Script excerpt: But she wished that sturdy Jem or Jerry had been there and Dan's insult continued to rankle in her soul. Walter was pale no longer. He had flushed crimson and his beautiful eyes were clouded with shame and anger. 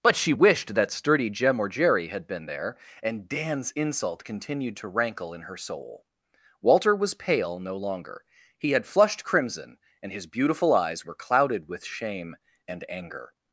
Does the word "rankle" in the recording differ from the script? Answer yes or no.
no